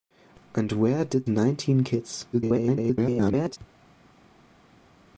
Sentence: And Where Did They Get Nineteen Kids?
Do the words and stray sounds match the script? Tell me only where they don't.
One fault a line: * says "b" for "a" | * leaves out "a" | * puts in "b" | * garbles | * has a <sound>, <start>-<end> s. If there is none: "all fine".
* leaves out "They Get"
* garbles